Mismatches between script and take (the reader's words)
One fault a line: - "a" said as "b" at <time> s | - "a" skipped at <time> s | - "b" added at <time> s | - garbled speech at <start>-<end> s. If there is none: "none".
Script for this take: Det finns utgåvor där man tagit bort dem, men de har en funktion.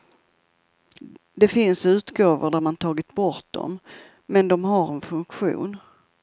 none